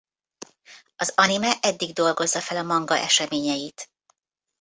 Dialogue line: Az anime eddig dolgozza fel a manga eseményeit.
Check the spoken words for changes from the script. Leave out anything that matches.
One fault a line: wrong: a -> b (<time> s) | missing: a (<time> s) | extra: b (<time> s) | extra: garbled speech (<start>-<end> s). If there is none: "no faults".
no faults